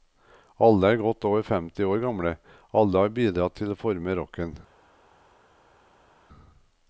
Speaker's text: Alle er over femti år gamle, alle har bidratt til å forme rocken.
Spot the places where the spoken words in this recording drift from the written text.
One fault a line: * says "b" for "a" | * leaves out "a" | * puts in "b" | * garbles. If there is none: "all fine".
* puts in "godt"